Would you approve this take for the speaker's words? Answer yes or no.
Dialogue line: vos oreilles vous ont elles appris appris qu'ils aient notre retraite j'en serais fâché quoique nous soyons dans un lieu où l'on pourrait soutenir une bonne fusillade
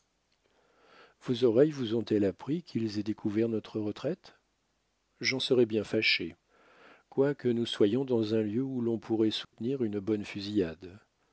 no